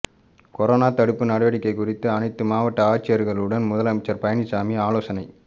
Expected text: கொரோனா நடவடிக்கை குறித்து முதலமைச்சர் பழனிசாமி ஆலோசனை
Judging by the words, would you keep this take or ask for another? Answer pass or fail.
fail